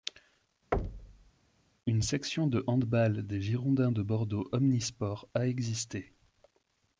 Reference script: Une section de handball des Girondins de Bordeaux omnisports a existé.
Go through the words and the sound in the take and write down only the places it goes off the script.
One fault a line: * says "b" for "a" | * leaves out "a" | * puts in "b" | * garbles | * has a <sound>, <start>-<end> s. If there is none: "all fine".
* has a thud, 0.7-1.3 s